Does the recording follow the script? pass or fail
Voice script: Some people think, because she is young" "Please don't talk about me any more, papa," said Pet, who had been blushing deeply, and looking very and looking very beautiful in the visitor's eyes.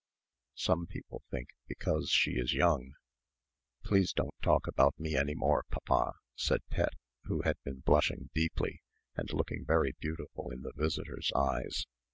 fail